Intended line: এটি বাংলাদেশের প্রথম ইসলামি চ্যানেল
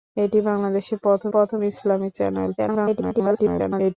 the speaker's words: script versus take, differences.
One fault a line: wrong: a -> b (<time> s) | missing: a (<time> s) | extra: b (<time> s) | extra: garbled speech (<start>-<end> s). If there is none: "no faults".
extra: প্রথম (1.3 s)
extra: garbled speech (2.6-4.0 s)